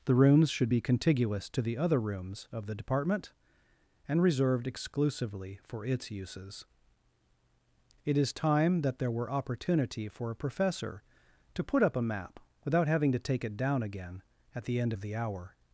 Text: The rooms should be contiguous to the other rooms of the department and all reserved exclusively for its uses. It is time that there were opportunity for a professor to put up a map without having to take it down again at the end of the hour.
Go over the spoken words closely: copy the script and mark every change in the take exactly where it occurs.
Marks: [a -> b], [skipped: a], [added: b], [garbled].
The rooms should be contiguous to the other rooms of the department and [skipped: all] reserved exclusively for its uses. It is time that there were opportunity for a professor to put up a map without having to take it down again at the end of the hour.